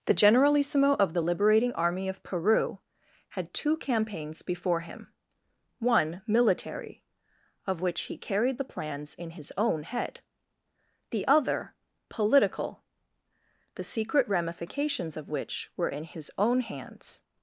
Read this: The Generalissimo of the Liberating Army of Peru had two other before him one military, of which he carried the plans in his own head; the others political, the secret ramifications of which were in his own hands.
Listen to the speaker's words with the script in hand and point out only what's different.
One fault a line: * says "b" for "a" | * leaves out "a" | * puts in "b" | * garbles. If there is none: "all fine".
* says "campaigns" for "other"
* says "other" for "others"